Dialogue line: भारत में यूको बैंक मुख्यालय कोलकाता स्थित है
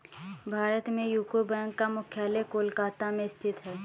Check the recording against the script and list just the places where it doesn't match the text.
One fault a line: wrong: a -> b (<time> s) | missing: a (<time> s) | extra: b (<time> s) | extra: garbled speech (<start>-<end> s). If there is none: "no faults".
extra: का (1.8 s)
extra: में (3.1 s)